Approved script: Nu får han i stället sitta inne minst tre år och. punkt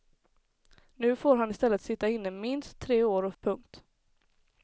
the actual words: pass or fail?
pass